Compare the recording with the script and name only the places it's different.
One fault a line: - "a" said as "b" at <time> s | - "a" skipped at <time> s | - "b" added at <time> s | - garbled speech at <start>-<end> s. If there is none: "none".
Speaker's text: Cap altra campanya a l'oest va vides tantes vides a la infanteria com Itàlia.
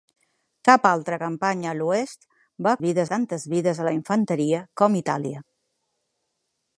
none